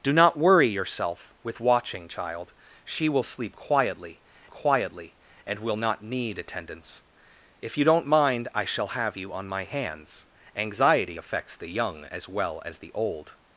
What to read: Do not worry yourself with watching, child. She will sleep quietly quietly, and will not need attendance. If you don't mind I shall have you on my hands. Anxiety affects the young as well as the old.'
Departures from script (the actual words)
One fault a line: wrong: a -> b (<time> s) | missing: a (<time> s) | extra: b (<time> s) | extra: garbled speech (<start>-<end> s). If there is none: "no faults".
no faults